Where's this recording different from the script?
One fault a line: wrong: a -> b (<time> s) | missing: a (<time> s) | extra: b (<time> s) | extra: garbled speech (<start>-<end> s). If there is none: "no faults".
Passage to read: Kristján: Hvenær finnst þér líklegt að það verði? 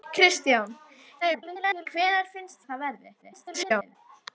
extra: garbled speech (1.2-1.9 s)
missing: þér líklegt (2.6 s)
extra: garbled speech (3.2-4.0 s)